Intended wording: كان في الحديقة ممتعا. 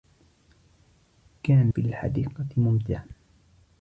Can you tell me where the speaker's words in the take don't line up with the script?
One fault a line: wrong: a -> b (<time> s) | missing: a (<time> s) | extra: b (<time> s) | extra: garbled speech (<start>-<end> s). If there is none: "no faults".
no faults